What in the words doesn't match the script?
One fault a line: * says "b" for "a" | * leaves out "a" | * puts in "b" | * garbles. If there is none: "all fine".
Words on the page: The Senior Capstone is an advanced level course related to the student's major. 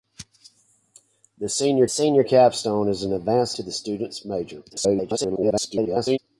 * puts in "Senior"
* leaves out "level course related"
* garbles